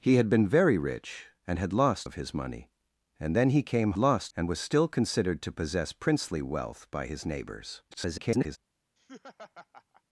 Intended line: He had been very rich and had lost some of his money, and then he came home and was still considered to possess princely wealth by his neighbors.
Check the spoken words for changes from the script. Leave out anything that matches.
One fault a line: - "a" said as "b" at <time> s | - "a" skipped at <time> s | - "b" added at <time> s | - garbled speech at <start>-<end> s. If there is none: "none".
- "some" skipped at 2.1 s
- "home" said as "lost" at 4.0 s
- garbled speech at 7.9-8.6 s